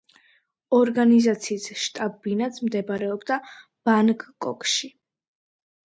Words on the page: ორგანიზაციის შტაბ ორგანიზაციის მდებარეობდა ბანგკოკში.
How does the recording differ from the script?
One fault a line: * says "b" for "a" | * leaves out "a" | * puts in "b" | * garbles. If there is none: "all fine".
* says "ბინაც" for "ორგანიზაციის"